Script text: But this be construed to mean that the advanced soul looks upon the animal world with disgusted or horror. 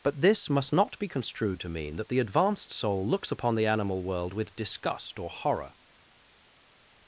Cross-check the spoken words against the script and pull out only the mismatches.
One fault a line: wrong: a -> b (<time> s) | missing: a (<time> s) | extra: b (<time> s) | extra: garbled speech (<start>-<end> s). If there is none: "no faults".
extra: must not (0.5 s)
wrong: disgusted -> disgust (4.5 s)